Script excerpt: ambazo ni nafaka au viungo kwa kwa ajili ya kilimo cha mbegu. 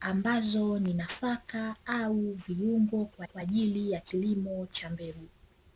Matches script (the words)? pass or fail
pass